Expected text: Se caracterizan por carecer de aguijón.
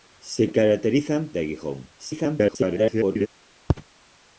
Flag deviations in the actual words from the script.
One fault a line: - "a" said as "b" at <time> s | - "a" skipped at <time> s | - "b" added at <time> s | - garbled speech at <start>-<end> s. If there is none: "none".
- "por carecer" skipped at 1.3 s
- garbled speech at 2.0-3.3 s